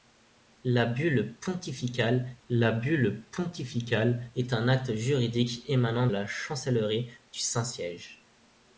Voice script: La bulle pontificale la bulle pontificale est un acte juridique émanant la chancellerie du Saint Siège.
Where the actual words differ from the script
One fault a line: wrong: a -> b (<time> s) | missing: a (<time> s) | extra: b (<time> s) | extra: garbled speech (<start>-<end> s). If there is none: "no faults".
no faults